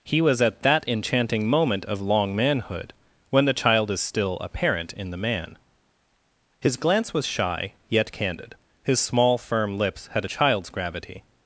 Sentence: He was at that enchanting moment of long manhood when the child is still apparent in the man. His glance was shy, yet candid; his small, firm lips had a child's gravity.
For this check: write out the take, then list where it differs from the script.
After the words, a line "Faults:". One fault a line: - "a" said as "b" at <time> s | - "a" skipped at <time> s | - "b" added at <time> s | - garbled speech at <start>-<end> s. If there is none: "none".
He was at that enchanting moment of long manhood when the child is still apparent in the man. His glance was shy, yet candid; his small, firm lips had a child's gravity.
Faults:
none